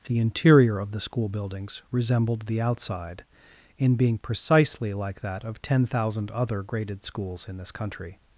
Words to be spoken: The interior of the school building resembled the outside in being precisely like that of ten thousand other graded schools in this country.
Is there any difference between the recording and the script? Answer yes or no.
yes